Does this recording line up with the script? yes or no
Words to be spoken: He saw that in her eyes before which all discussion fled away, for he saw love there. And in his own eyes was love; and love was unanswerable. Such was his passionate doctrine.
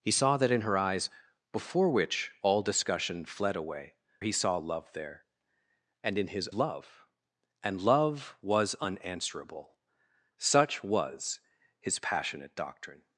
no